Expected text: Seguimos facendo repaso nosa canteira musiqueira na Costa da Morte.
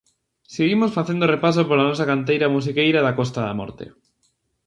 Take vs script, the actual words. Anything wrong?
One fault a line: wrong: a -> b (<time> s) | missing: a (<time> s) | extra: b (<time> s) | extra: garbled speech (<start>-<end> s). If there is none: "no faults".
extra: pola (1.7 s)
wrong: na -> da (3.0 s)